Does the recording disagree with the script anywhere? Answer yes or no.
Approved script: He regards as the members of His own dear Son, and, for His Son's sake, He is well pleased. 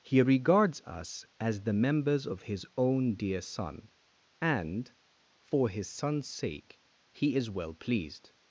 yes